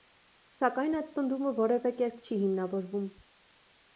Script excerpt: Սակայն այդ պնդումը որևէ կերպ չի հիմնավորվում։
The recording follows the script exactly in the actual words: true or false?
true